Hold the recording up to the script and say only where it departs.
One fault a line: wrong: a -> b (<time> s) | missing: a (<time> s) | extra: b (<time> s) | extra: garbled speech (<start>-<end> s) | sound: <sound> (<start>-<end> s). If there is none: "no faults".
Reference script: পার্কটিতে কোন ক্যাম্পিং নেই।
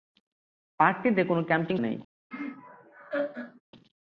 sound: laugh (2.3-3.6 s)